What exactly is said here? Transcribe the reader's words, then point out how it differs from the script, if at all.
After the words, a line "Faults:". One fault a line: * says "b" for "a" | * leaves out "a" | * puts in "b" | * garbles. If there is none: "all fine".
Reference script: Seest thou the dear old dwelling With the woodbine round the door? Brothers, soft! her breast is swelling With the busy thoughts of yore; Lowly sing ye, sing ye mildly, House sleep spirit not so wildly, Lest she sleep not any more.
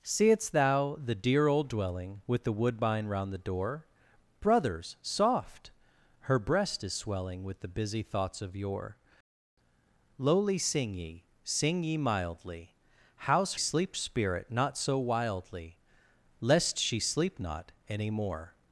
Seest thou the dear old dwelling With the woodbine round the door? Brothers, soft! her breast is swelling With the busy thoughts of yore; Lowly sing ye, sing ye mildly, House sleep spirit not so wildly, Lest she sleep not any more.
Faults:
all fine